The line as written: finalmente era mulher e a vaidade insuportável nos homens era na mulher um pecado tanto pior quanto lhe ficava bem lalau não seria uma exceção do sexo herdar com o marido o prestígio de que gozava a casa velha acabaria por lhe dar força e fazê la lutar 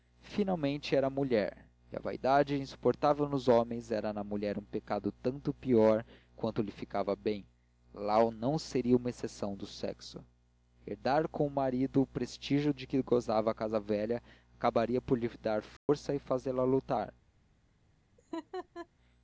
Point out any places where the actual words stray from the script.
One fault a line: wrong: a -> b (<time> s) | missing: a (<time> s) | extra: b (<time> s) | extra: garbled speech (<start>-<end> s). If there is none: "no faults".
no faults